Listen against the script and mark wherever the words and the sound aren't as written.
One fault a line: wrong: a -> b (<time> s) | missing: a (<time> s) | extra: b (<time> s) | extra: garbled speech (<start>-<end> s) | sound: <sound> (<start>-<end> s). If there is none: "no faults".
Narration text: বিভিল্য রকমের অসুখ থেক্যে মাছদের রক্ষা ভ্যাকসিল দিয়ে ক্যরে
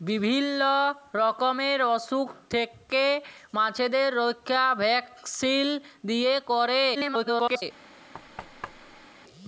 extra: garbled speech (6.9-7.6 s)
sound: thud (8.1-9.1 s)